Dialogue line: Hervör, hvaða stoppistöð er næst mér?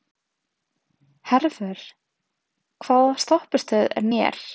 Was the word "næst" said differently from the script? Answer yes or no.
yes